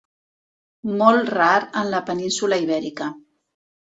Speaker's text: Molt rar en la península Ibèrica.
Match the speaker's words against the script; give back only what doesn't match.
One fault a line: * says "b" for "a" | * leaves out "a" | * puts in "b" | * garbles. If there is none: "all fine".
all fine